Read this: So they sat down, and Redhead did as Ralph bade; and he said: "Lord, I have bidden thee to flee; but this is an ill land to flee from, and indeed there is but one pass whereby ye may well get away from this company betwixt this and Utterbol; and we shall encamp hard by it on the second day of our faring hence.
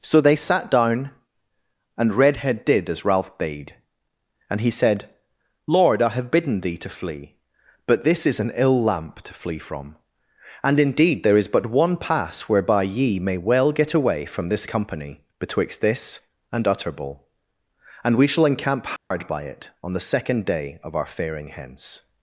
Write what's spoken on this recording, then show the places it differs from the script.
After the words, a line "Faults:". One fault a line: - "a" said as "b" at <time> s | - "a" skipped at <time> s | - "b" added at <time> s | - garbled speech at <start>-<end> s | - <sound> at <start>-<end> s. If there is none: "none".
So they sat down, and Redhead did as Ralph bade; and he said: "Lord, I have bidden thee to flee; but this is an ill lamp to flee from, and indeed there is but one pass whereby ye may well get away from this company betwixt this and Utterbol; and we shall encamp hard by it on the second day of our faring hence.
Faults:
- "land" said as "lamp" at 8.8 s
- dropout at 19.0-19.1 s